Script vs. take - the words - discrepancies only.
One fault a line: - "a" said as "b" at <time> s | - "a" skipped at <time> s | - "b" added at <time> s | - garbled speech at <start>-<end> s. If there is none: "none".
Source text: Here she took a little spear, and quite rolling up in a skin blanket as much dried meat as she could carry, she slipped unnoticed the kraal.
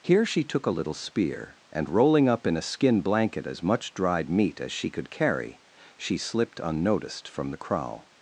- "quite" skipped at 1.9 s
- "from" added at 7.3 s